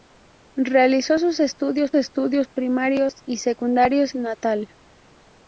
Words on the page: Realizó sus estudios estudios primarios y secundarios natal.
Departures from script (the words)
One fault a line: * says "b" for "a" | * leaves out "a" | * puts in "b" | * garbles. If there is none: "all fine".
all fine